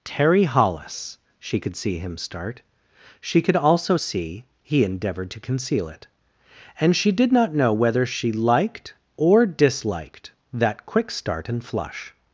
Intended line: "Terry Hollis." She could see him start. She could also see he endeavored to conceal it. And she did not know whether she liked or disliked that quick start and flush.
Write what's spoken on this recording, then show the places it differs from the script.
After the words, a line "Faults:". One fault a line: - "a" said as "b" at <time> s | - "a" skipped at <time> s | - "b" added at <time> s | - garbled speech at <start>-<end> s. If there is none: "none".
"Terry Hollis." She could see him start. She could also see he endeavored to conceal it. And she did not know whether she liked or disliked that quick start and flush.
Faults:
none